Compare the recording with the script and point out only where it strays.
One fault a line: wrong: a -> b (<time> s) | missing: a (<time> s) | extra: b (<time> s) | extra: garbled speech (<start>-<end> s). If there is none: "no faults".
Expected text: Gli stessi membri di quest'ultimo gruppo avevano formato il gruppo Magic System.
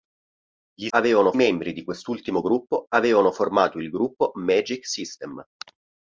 wrong: stessi -> avevano (0.9 s)